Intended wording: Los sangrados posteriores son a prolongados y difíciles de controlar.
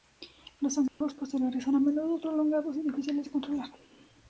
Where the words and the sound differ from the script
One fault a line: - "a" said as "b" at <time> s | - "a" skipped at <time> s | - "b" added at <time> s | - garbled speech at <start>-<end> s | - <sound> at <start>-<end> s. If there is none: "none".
- dropout at 0.9-1.0 s
- "menudo" added at 1.8 s